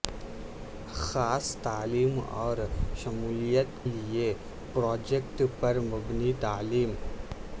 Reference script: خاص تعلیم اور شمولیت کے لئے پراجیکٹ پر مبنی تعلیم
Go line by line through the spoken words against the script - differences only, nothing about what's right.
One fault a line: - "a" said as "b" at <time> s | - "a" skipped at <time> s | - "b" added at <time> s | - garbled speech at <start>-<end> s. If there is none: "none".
- "کے" skipped at 3.9 s